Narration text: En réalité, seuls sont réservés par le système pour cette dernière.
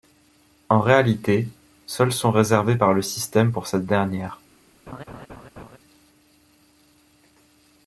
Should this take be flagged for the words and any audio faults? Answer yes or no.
yes